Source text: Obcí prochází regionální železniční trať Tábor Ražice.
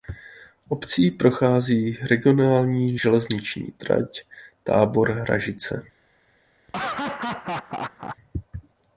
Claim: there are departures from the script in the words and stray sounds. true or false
true